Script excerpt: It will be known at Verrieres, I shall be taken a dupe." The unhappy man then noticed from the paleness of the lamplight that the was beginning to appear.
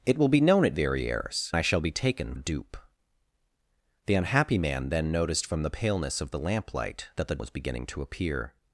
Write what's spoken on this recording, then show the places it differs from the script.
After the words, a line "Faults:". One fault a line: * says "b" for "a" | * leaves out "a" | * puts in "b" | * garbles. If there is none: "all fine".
It will be known at Verrieres, I shall be taken a dupe." The unhappy man then noticed from the paleness of the lamplight that the was beginning to appear.
Faults:
all fine